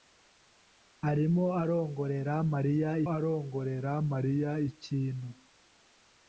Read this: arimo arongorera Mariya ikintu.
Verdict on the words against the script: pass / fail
fail